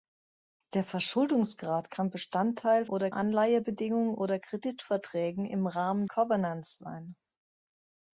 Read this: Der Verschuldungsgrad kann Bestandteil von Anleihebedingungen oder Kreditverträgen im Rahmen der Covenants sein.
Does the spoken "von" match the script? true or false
false